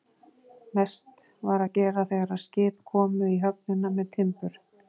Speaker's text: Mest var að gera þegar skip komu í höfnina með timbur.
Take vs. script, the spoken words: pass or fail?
pass